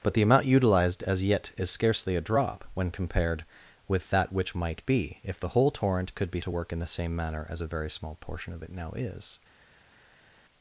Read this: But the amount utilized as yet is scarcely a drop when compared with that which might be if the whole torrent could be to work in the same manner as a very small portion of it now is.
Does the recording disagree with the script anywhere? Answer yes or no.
no